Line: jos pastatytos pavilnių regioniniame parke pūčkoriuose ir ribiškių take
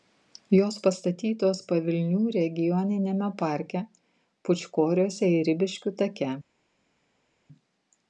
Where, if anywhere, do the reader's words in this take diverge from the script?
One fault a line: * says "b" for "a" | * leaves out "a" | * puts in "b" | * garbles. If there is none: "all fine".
all fine